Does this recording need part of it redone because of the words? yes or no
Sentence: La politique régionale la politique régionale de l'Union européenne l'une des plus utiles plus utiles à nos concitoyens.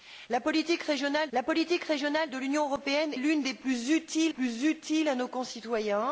no